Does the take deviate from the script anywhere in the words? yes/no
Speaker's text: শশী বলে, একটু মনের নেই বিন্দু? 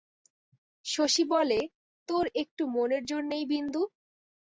yes